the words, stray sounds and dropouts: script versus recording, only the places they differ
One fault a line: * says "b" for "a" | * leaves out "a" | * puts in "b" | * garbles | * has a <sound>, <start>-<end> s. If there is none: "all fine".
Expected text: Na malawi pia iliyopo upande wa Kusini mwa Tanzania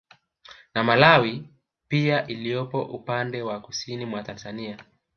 all fine